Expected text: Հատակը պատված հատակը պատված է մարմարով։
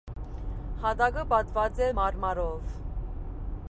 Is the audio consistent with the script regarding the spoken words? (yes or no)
no